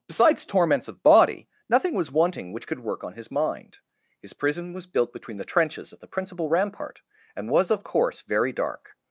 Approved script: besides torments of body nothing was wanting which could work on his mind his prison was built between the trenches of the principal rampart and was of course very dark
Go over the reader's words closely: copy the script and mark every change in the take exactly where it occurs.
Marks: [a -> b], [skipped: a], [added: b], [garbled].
besides torments of body nothing was wanting which could work on his mind his prison was built between the trenches of the principal rampart and was of course very dark